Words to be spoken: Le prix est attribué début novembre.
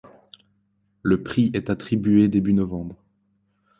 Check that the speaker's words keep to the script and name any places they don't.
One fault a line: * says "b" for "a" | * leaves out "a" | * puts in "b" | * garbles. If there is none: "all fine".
all fine